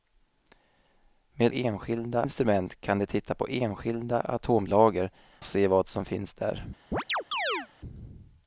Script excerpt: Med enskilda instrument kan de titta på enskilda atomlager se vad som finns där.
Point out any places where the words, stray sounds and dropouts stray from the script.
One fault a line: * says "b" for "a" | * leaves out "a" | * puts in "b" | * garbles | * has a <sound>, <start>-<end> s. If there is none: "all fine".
* has a chirp, 6.9-7.7 s